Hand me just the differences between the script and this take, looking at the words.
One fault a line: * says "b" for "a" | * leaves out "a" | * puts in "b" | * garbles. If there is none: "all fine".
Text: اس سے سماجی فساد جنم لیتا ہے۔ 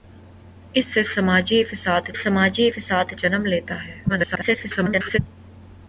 * puts in "سماجی فساد"
* garbles